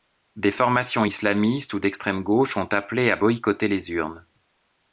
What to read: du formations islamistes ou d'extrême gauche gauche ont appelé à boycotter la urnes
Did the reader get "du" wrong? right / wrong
wrong